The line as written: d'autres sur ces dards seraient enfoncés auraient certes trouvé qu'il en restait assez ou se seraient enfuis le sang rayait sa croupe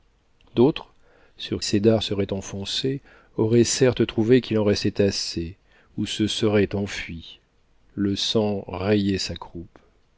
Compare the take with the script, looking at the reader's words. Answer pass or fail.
pass